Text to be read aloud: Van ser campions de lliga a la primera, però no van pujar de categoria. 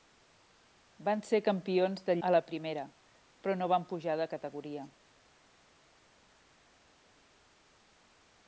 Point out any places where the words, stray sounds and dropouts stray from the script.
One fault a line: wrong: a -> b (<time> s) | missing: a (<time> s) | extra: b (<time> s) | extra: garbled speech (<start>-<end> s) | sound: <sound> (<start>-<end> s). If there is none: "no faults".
missing: lliga (2.1 s)